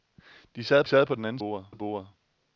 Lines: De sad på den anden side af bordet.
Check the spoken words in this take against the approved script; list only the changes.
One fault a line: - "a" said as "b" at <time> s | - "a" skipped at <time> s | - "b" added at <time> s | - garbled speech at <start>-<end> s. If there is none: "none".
- "sad" added at 0.8 s
- "side" said as "bordet" at 1.4 s